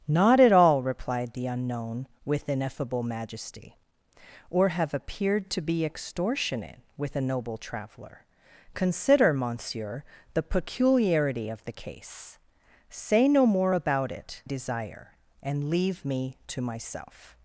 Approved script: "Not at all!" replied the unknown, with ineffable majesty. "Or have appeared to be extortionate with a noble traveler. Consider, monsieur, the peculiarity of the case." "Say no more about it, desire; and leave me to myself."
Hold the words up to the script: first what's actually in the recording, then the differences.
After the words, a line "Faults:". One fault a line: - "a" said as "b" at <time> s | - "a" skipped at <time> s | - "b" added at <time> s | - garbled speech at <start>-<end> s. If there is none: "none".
"Not at all!" replied the unknown, with ineffable majesty. "Or have appeared to be extortionate with a noble traveler. Consider, monsieur, the peculiarity of the case." "Say no more about it, desire; and leave me to myself."
Faults:
none